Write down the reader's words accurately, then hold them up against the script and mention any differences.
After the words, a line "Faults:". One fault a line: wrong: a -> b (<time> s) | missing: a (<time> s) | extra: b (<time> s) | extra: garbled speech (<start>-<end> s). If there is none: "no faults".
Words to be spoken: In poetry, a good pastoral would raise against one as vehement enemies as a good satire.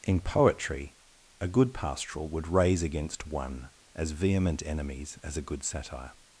In poetry, a good pastoral would raise against one as vehement enemies as a good satire.
Faults:
no faults